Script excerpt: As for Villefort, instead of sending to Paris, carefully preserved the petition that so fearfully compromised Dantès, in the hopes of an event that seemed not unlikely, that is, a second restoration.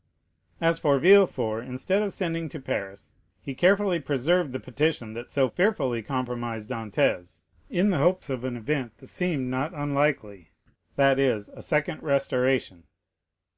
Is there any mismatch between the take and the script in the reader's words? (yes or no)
yes